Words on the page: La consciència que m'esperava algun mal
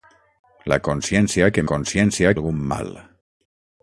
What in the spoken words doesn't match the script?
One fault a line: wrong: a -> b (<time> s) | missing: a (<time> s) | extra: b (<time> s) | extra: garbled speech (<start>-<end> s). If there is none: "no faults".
wrong: m'esperava -> consciència (1.7 s)